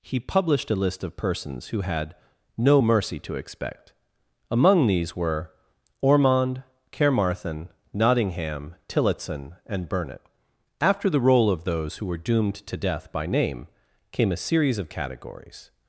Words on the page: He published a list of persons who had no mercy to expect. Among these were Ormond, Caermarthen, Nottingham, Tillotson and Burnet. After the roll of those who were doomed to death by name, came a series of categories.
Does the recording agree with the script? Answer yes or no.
yes